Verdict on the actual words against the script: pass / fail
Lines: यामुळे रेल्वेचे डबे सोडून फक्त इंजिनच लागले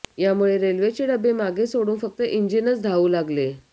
fail